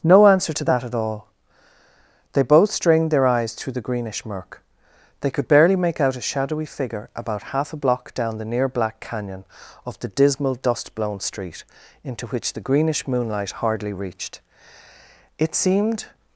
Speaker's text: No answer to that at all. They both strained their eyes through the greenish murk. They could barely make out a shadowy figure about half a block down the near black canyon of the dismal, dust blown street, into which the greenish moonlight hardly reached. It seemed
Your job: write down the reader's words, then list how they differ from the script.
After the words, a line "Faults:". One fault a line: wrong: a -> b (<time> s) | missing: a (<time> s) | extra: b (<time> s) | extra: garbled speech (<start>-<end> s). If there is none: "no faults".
No answer to that at all. They both strained their eyes through the greenish murk. They could barely make out a shadowy figure about half a block down the near black canyon of the dismal, dust blown street, into which the greenish moonlight hardly reached. It seemed
Faults:
no faults